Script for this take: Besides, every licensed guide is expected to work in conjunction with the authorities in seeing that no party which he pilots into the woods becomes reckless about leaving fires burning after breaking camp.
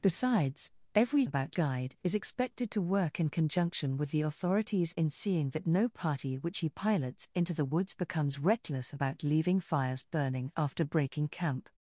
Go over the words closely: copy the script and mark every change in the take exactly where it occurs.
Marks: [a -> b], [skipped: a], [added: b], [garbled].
Besides, every [licensed -> about] guide is expected to work in conjunction with the authorities in seeing that no party which he pilots into the woods becomes reckless about leaving fires burning after breaking camp.